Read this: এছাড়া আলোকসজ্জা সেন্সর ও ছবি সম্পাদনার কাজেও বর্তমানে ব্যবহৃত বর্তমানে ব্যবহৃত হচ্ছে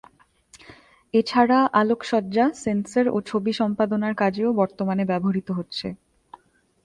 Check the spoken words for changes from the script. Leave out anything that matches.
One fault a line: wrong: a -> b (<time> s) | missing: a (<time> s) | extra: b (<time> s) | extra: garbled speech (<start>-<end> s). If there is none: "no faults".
missing: বর্তমানে ব্যবহৃত (5.5 s)